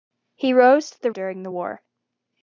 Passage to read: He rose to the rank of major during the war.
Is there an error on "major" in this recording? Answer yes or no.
yes